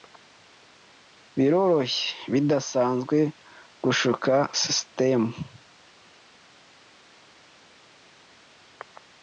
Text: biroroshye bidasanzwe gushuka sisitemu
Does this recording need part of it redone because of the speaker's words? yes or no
no